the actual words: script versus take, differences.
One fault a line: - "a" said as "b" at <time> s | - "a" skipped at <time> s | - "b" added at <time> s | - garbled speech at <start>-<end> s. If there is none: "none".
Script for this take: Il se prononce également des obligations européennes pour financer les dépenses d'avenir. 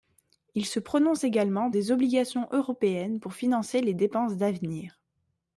none